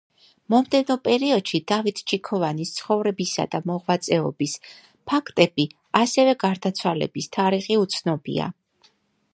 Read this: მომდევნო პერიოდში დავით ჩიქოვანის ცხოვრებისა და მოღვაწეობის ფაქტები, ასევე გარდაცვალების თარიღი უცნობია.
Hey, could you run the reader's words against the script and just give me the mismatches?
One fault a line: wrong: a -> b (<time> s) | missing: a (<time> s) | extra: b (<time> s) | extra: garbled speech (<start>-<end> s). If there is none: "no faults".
no faults